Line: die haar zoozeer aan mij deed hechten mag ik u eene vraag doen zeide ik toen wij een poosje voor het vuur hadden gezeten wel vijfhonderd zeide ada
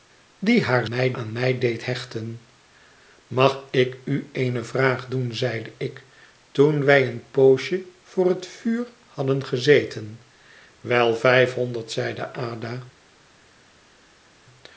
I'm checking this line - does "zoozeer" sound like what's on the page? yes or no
no